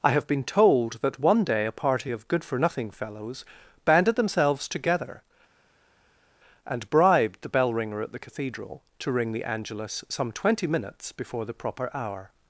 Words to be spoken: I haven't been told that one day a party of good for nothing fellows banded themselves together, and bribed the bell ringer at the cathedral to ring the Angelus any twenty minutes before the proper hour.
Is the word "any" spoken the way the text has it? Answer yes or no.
no